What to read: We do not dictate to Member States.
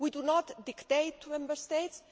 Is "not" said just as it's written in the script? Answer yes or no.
yes